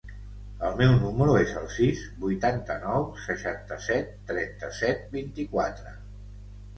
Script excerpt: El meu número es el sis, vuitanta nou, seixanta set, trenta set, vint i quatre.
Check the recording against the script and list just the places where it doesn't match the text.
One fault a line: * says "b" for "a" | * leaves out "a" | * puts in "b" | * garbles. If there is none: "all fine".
all fine